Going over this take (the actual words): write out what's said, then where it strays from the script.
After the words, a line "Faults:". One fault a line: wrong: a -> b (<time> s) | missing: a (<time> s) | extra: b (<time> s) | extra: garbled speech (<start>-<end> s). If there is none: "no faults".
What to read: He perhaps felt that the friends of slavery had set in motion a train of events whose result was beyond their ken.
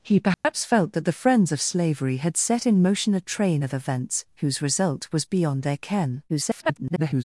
He perhaps felt that the friends of slavery had set in motion a train of events whose result was beyond their ken. [garbled]
Faults:
extra: garbled speech (6.3-7.2 s)